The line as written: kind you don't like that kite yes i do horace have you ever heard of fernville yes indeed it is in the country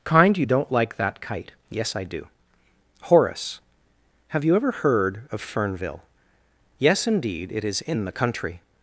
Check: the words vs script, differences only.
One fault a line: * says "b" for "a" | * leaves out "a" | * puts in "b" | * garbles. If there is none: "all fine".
all fine